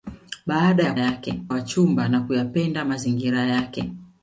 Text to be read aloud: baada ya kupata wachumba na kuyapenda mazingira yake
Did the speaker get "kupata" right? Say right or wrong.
wrong